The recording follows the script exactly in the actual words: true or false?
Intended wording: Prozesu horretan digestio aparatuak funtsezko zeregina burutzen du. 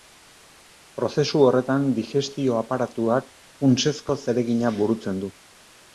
true